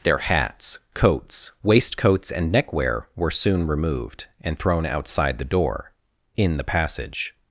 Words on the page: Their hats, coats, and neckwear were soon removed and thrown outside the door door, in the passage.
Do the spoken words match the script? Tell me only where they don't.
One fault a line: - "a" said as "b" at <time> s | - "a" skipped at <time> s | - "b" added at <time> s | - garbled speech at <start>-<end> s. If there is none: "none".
- "waistcoats" added at 1.6 s
- "door" skipped at 5.9 s